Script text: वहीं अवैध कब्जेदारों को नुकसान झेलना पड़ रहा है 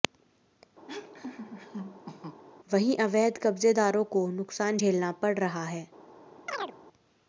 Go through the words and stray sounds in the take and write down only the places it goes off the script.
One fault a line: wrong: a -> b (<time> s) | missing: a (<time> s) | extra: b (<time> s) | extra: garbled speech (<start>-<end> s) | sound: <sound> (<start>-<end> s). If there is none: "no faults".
sound: laugh (0.9-2.4 s)
sound: chirp (6.5-6.8 s)